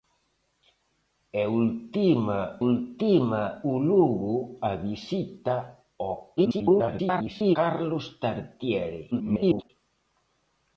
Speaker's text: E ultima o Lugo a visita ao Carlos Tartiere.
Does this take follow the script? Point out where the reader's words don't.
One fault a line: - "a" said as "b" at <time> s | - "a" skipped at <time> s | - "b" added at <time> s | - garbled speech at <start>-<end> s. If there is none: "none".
- "ultima" added at 2.7 s
- garbled speech at 6.4-7.6 s
- garbled speech at 9.1-9.7 s